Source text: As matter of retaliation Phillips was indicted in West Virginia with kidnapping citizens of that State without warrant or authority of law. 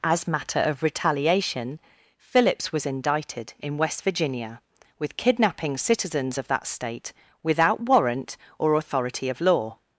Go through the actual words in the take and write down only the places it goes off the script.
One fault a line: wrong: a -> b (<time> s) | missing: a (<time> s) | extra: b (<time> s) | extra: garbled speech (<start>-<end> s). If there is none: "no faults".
no faults